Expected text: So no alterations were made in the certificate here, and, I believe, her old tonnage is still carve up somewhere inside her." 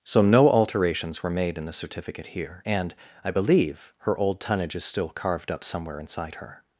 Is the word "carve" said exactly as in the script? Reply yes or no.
no